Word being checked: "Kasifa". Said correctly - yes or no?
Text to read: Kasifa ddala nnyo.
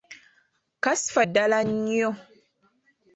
yes